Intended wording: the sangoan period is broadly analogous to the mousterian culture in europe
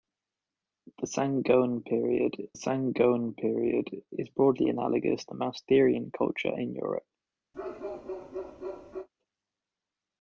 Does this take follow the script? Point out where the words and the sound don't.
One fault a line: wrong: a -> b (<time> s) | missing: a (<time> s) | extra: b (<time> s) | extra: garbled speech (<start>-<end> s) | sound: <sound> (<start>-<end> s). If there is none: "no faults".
extra: sangoan period (2.5 s)
missing: to (5.2 s)
sound: bark (7.5-9.1 s)